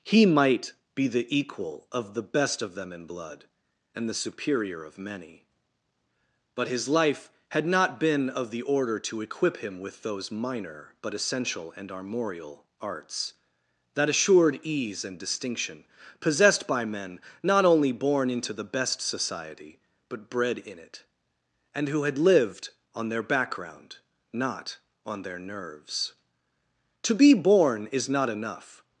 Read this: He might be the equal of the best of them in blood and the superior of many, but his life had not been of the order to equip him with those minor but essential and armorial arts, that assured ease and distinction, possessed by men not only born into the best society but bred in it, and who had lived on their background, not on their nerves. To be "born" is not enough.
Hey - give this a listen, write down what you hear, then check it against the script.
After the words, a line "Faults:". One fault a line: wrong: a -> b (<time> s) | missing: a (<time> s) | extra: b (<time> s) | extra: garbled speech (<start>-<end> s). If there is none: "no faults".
He might be the equal of the best of them in blood and the superior of many, but his life had not been of the order to equip him with those minor but essential and armorial arts, that assured ease and distinction, possessed by men not only born into the best society but bred in it, and who had lived on their background, not on their nerves. To be "born" is not enough.
Faults:
no faults